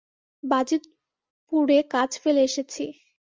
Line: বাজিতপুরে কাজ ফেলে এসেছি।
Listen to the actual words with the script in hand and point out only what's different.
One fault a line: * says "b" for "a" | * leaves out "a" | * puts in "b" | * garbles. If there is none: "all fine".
all fine